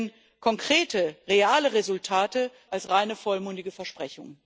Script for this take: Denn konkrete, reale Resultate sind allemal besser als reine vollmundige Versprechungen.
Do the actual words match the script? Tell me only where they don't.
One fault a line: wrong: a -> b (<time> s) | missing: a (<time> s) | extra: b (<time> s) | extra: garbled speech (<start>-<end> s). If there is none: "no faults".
missing: sind allemal besser (2.5 s)